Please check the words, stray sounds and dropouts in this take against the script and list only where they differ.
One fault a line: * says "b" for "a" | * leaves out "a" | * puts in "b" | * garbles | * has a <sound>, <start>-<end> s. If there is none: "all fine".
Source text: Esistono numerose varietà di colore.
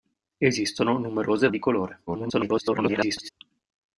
* leaves out "varietà"
* garbles